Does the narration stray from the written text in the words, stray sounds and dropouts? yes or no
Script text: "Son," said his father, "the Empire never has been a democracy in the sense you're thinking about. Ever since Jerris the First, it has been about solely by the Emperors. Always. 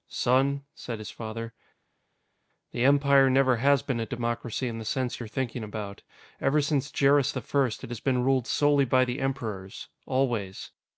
yes